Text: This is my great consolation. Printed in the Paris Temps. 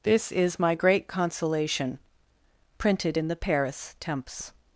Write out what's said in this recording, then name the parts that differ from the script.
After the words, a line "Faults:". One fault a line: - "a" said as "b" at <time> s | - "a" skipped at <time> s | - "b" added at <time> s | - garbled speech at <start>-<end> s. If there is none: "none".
This is my great consolation. Printed in the Paris Temps.
Faults:
none